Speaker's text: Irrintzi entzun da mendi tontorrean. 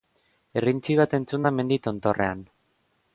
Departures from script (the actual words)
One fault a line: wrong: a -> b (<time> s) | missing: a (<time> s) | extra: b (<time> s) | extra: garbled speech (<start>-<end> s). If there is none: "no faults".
extra: bat (1.0 s)